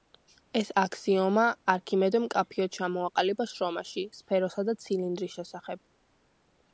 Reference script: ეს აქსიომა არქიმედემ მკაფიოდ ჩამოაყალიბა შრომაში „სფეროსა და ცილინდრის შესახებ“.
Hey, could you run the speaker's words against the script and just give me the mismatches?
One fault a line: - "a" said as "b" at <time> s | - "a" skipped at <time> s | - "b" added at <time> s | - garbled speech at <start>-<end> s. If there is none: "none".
none